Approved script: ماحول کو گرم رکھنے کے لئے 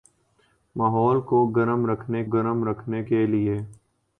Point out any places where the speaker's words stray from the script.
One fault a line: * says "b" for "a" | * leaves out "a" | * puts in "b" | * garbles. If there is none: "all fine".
* puts in "گرم رکھنے"